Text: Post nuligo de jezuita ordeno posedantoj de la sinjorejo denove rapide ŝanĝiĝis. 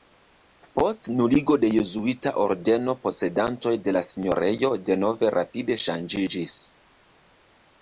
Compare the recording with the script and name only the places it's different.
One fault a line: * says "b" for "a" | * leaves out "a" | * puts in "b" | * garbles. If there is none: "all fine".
all fine